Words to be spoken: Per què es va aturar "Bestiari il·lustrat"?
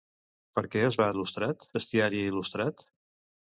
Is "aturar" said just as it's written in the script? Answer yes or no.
no